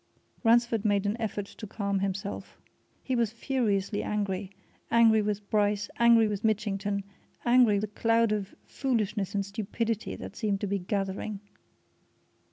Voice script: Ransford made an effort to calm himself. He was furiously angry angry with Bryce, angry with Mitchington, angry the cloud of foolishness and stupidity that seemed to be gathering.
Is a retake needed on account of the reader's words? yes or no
no